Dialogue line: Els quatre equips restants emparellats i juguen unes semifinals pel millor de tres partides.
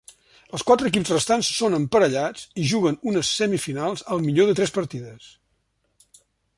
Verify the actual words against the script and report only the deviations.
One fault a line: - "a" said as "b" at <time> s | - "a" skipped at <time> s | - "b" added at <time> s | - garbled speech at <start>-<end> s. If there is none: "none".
- "són" added at 1.6 s
- "pel" said as "al" at 4.2 s